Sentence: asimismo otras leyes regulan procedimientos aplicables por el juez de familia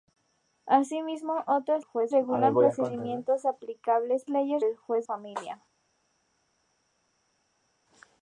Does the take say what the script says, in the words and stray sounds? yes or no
no